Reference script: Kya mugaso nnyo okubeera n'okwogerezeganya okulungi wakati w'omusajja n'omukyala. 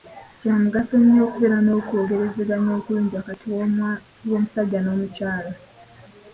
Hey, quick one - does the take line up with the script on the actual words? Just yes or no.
yes